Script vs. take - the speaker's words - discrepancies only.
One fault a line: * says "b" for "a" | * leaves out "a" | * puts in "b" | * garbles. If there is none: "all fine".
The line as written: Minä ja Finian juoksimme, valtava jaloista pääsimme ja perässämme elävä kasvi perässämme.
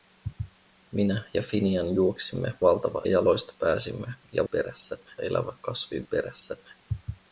all fine